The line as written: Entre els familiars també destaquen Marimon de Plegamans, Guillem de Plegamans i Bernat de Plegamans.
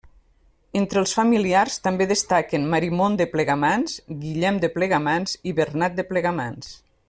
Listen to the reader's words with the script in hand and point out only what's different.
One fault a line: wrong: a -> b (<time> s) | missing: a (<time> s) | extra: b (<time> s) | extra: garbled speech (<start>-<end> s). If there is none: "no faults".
no faults